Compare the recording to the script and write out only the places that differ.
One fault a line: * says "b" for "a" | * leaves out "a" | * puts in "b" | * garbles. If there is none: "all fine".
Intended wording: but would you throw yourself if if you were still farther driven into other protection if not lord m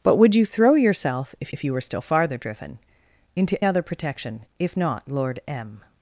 all fine